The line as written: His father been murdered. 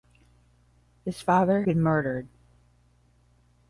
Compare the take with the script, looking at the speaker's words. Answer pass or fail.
pass